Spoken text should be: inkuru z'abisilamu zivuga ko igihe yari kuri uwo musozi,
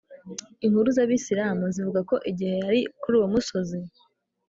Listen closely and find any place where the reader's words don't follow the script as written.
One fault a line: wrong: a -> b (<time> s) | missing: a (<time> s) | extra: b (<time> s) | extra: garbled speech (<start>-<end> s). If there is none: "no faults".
no faults